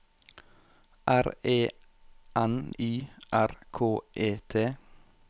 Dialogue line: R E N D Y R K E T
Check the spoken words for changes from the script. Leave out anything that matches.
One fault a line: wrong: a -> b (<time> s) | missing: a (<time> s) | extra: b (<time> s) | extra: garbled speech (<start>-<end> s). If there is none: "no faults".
missing: D (2.5 s)